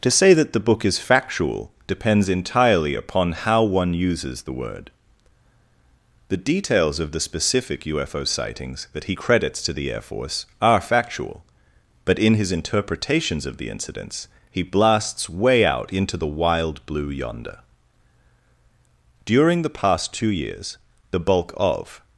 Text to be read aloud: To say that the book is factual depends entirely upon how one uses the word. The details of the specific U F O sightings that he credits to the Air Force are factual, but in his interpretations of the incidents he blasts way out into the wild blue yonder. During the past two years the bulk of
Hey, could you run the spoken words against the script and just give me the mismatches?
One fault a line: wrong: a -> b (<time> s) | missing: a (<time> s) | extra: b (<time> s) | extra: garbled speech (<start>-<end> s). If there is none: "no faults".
no faults